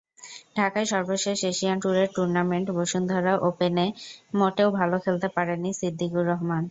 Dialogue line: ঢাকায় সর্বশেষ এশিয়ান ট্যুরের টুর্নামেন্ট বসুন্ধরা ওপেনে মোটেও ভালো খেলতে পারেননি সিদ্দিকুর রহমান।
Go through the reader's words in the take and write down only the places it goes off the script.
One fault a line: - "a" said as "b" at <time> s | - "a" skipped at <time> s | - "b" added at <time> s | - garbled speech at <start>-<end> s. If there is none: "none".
none